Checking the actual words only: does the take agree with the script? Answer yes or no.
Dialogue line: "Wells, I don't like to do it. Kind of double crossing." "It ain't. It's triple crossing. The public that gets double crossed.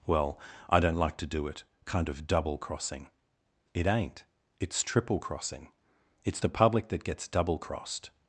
no